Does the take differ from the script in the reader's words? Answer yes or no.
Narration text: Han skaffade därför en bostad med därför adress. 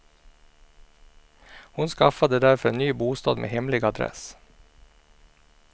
yes